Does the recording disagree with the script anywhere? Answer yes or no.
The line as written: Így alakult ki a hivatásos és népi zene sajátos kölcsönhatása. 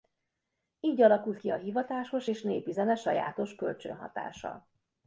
no